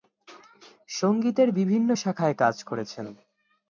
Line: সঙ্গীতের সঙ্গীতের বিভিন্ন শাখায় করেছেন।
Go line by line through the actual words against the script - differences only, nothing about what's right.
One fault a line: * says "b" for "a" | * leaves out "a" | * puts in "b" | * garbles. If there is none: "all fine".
* leaves out "সঙ্গীতের"
* puts in "কাজ"